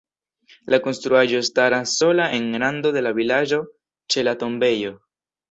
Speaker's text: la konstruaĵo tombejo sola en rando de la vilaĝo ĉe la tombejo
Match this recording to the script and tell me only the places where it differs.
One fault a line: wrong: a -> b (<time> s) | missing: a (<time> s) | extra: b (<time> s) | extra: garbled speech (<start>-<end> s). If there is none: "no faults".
wrong: tombejo -> staras (1.5 s)